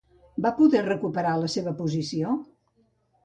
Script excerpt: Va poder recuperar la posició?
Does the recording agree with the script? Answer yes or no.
no